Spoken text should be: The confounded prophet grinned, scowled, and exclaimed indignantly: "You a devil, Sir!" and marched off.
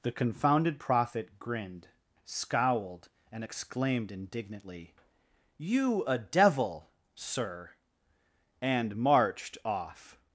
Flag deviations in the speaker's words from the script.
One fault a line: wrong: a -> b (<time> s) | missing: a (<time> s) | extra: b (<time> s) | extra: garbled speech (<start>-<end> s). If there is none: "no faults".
no faults